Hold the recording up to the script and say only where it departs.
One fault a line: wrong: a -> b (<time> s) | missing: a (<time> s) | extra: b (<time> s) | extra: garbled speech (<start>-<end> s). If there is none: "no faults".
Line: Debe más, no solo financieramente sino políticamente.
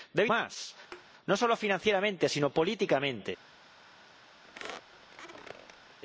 no faults